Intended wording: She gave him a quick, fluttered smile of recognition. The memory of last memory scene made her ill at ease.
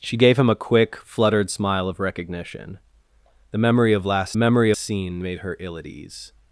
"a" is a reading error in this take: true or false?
false